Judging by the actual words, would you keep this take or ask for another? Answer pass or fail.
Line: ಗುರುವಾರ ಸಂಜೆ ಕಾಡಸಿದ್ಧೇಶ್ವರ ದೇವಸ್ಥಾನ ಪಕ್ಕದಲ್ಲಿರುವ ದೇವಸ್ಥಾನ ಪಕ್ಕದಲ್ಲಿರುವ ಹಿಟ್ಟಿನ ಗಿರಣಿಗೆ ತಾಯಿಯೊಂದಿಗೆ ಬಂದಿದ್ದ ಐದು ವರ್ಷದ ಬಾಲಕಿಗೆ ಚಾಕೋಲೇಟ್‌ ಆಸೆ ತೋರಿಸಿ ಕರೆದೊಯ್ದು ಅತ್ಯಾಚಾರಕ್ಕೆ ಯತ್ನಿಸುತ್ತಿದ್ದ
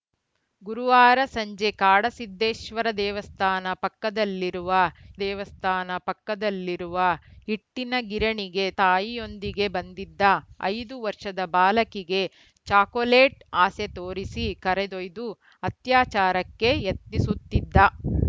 pass